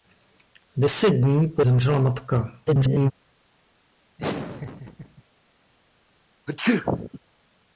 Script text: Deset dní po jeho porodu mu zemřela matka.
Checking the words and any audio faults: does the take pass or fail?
fail